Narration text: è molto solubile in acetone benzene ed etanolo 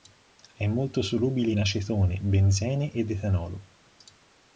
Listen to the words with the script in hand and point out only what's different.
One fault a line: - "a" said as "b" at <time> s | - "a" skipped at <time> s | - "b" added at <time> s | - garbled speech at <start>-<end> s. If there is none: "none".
none